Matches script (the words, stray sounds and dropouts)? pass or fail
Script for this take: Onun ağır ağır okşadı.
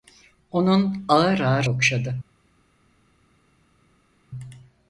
pass